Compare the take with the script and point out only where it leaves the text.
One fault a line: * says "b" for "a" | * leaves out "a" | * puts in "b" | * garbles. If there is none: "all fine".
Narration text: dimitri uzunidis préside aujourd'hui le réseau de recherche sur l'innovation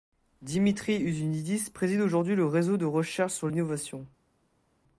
all fine